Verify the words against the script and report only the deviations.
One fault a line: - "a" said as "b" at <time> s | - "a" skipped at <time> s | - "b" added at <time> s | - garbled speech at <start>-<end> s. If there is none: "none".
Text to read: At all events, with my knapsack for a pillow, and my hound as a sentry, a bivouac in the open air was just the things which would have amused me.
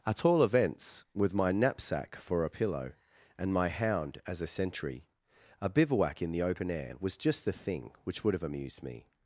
- "things" said as "thing" at 7.5 s